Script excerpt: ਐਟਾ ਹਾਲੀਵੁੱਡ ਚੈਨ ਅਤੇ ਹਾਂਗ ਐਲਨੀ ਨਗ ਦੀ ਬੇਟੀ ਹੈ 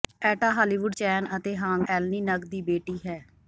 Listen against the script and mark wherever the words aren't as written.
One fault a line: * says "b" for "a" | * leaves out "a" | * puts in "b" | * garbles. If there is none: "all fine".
all fine